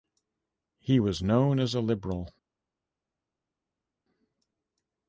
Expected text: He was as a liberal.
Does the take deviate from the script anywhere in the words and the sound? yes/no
yes